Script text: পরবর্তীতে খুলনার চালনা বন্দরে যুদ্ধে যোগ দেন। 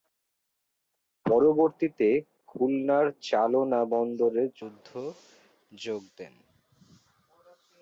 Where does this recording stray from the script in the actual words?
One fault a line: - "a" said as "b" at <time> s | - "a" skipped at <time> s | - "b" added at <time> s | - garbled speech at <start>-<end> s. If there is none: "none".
none